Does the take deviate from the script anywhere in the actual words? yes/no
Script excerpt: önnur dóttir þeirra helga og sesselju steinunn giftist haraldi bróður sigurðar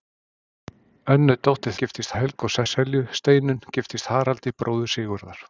yes